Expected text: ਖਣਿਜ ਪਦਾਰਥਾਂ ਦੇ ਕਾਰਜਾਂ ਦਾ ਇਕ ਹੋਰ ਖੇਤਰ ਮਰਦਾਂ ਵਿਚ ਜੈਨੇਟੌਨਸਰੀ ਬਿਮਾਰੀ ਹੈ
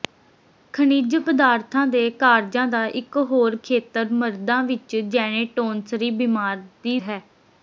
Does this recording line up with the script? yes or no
yes